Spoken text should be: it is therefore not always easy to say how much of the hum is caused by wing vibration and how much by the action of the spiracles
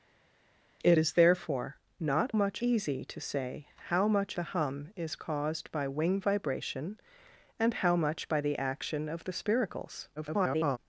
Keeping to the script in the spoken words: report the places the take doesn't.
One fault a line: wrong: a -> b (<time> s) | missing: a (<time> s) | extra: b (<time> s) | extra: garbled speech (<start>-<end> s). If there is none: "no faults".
wrong: always -> much (2.3 s)
missing: of (4.4 s)
extra: garbled speech (10.2-10.8 s)